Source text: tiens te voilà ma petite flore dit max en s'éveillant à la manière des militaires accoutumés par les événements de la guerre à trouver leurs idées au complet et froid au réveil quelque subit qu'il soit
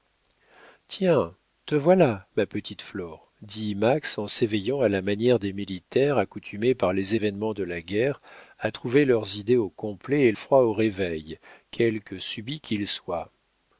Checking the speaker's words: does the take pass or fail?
pass